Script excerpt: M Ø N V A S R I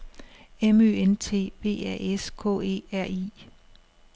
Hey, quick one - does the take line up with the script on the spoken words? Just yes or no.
no